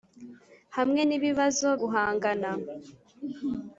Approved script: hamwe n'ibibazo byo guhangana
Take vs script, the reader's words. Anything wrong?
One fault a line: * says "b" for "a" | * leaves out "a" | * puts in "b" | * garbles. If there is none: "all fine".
* leaves out "byo"